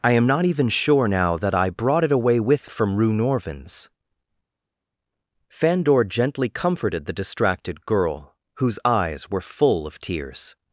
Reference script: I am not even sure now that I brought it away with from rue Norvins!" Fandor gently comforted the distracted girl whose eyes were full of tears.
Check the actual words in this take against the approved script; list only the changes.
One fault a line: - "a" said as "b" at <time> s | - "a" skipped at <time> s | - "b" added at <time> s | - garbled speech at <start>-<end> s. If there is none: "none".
none